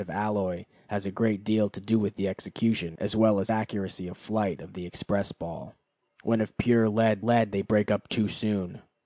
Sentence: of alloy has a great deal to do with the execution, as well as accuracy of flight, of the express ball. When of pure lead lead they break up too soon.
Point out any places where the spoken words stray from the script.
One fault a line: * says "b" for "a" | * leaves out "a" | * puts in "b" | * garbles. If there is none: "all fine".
all fine